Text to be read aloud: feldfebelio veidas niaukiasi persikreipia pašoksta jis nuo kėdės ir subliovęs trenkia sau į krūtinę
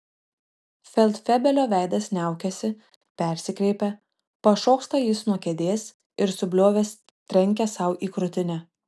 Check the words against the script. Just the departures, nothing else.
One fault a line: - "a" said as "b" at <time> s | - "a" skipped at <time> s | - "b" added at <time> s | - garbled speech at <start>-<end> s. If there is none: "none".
none